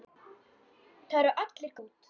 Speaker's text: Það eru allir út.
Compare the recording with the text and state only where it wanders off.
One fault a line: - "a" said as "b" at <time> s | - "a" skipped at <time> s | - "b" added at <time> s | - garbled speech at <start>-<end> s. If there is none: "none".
none